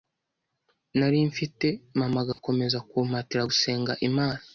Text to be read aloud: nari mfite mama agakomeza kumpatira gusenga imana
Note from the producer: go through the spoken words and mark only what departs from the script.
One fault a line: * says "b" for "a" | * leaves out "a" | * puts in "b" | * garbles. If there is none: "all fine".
all fine